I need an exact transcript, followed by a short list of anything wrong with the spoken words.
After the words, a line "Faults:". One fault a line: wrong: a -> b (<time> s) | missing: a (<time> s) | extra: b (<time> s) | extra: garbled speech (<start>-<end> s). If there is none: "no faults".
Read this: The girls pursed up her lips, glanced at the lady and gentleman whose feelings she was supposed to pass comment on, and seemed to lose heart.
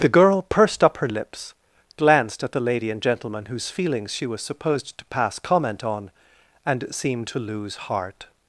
The girl pursed up her lips, glanced at the lady and gentleman whose feelings she was supposed to pass comment on, and seemed to lose heart.
Faults:
wrong: girls -> girl (0.1 s)